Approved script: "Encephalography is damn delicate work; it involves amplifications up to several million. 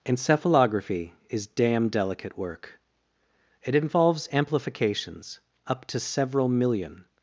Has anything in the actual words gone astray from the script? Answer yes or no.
no